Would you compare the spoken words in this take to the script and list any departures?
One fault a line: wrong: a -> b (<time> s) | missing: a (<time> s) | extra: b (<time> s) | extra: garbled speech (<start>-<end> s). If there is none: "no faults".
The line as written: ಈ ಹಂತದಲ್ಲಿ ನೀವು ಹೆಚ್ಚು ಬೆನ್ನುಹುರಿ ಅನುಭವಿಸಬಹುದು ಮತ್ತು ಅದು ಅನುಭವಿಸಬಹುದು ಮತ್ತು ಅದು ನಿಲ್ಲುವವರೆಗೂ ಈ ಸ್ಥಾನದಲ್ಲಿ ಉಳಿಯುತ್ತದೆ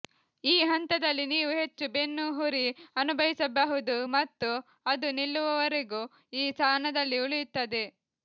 missing: ಅನುಭವಿಸಬಹುದು ಮತ್ತು ಅದು (5.1 s)